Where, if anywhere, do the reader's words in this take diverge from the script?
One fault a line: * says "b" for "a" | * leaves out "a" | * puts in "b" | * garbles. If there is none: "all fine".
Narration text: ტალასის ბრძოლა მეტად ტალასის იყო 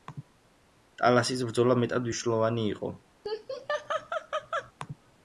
* says "მნიშვნელოვანი" for "ტალასის"